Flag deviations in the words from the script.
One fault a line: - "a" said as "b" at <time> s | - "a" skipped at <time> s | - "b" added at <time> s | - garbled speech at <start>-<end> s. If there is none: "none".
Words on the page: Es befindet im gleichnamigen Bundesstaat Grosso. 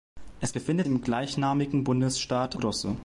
none